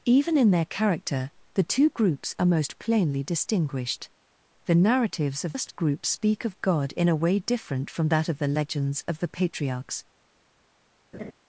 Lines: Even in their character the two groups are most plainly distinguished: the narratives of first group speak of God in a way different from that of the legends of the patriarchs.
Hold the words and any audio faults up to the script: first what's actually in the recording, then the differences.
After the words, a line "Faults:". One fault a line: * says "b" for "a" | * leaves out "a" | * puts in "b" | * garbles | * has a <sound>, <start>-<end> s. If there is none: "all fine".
Even in their character the two groups are most plainly distinguished: the narratives of first group speak of God in a way different from that of the legends of the patriarchs.
Faults:
* has a laugh, 11.1-11.3 s